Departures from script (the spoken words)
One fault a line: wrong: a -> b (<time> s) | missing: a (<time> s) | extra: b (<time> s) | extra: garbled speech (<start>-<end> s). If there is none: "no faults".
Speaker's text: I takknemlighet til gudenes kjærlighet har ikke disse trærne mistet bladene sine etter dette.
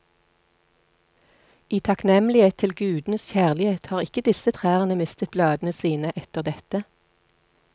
no faults